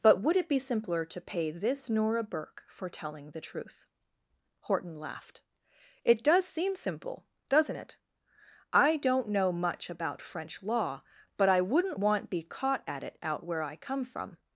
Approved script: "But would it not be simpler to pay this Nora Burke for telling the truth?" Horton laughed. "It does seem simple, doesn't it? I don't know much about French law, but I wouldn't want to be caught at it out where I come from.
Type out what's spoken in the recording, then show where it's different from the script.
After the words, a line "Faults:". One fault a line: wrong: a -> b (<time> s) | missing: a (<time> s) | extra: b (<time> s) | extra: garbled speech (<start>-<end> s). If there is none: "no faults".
"But would it be simpler to pay this Nora Burke for telling the truth?" Horton laughed. "It does seem simple, doesn't it? I don't know much about French law, but I wouldn't want be caught at it out where I come from.
Faults:
missing: not (0.5 s)
missing: to (12.3 s)